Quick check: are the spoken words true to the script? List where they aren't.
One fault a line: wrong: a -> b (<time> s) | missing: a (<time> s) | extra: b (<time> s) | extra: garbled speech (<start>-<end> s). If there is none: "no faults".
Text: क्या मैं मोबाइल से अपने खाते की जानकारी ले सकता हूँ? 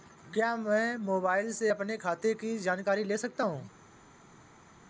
no faults